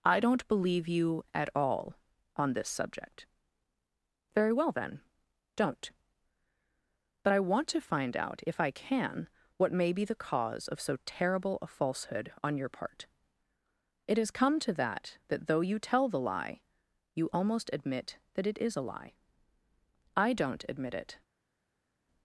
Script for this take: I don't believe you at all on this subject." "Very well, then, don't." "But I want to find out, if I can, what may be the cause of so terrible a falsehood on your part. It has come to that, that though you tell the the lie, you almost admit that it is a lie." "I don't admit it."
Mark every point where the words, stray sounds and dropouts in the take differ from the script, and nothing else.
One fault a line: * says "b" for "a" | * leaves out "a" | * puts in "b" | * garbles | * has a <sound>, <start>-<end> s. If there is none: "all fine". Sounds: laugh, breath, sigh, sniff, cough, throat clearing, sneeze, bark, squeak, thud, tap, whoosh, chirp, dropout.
* leaves out "the"